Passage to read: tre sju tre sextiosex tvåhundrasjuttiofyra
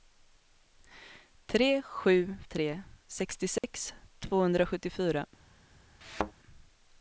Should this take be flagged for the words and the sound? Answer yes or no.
yes